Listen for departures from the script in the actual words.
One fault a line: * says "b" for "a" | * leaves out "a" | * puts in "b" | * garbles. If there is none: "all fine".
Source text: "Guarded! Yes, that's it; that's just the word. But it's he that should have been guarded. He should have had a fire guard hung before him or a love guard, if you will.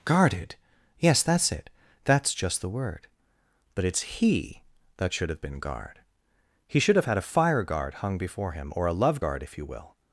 * says "guard" for "guarded"